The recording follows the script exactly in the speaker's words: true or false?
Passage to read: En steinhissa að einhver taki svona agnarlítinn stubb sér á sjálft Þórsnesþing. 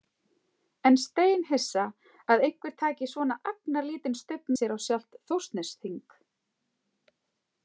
true